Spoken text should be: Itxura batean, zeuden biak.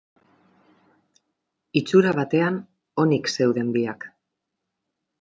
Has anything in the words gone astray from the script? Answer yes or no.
yes